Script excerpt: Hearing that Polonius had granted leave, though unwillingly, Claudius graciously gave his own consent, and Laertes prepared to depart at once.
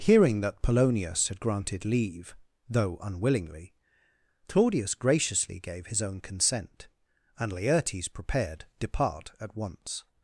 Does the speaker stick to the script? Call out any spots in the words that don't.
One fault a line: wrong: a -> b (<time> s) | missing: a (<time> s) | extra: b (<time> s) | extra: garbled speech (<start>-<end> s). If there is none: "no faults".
missing: to (8.6 s)